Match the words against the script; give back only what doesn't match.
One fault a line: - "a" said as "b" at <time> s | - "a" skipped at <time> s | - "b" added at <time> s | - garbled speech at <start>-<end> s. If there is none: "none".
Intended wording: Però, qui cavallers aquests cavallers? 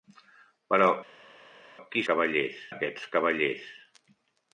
none